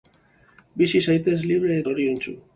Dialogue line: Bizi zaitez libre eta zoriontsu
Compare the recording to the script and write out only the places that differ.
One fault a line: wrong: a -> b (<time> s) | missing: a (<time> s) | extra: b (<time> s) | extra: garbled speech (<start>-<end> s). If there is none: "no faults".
missing: eta (1.8 s)